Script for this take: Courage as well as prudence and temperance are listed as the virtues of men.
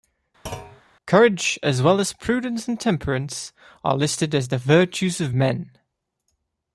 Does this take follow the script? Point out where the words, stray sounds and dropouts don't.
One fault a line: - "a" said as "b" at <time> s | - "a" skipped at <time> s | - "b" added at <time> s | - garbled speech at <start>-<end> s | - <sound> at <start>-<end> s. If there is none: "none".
- thud at 0.5-0.8 s